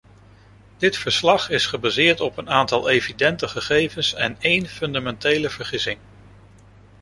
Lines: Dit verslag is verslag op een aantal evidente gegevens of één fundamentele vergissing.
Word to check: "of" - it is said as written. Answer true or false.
false